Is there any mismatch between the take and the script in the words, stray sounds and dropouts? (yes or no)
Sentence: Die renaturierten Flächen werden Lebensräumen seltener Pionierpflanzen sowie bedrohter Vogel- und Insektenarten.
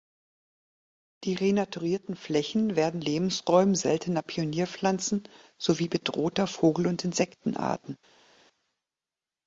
no